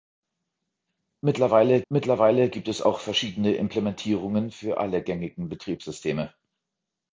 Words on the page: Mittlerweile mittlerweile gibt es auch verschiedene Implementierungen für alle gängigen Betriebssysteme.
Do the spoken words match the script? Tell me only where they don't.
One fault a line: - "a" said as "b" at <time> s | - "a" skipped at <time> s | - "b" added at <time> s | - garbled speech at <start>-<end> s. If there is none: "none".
none